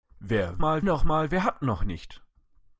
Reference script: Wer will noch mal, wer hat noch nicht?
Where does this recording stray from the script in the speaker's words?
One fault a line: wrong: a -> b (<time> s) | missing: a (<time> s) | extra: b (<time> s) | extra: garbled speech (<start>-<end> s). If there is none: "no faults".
wrong: will -> mal (0.6 s)